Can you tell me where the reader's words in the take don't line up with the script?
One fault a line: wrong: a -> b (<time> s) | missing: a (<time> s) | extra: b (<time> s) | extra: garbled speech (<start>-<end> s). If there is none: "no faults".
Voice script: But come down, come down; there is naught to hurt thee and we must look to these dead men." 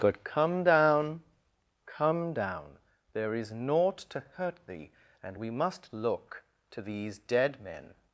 no faults